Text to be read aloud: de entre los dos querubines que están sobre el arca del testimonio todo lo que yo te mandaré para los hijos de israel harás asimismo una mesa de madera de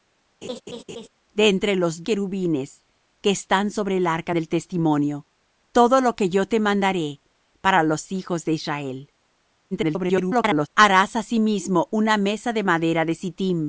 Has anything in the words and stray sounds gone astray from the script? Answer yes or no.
yes